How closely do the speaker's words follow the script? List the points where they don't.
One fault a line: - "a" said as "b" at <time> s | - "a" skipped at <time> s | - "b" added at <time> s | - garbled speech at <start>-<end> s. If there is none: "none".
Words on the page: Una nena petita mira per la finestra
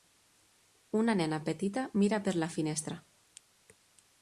none